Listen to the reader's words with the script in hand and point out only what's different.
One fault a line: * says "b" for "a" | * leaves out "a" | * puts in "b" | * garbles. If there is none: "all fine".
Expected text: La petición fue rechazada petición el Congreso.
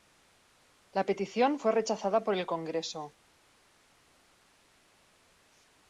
* says "por" for "petición"